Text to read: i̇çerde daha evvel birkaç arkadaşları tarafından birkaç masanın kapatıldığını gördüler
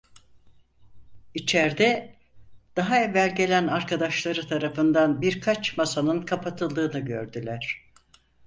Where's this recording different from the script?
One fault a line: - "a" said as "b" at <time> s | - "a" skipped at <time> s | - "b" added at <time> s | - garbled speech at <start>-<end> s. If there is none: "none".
- "birkaç" said as "gelen" at 3.4 s